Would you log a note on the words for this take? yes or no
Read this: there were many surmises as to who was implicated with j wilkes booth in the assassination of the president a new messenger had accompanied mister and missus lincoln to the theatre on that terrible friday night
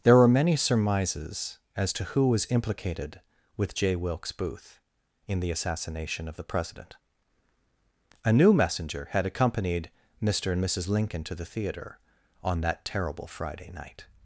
no